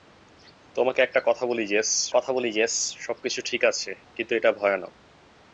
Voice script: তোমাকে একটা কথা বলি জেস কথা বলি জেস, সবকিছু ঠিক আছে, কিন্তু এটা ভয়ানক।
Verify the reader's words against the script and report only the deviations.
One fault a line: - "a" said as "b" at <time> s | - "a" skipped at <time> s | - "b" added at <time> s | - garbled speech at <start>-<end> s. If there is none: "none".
none